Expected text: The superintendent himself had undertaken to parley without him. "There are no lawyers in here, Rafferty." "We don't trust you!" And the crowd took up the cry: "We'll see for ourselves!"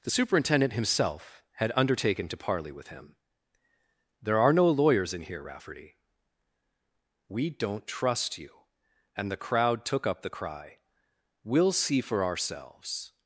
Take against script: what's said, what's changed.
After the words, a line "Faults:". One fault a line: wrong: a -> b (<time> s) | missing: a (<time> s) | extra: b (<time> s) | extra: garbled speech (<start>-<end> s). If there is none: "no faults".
The superintendent himself had undertaken to parley with him. "There are no lawyers in here, Rafferty." "We don't trust you!" And the crowd took up the cry: "We'll see for ourselves!"
Faults:
wrong: without -> with (2.7 s)